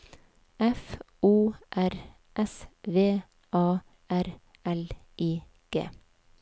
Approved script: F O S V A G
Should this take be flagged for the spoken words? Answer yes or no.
yes